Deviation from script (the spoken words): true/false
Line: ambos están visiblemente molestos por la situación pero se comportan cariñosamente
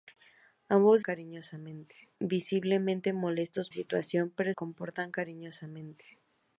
true